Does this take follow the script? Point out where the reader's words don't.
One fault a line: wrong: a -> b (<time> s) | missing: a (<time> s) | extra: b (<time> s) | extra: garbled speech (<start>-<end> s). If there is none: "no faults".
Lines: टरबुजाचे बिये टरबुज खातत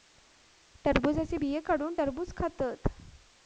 extra: काढुन (1.6 s)